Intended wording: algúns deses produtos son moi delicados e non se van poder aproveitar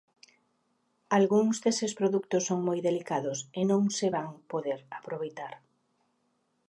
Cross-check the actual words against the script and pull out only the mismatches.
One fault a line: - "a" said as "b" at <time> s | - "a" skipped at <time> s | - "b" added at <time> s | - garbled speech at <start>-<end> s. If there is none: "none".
none